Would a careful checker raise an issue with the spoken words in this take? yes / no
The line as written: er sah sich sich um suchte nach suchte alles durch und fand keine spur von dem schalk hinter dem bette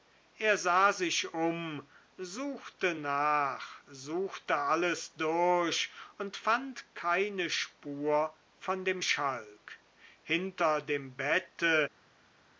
yes